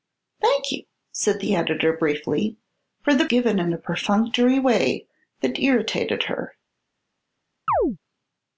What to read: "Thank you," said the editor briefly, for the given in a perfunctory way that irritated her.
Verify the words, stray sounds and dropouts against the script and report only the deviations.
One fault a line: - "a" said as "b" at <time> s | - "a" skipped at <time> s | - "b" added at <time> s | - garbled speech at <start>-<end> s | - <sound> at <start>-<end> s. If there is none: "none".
- chirp at 7.7-8.0 s